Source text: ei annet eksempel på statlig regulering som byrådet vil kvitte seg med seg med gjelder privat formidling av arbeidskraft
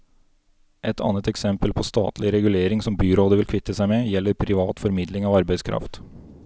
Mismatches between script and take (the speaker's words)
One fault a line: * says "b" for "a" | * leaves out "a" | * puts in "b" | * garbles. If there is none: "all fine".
* says "et" for "ei"
* leaves out "seg med"